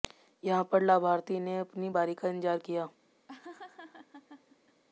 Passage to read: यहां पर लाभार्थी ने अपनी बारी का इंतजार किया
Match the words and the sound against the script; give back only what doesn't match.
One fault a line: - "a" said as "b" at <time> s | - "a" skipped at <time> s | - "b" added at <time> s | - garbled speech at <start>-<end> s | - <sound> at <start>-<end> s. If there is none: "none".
- laugh at 3.3-4.8 s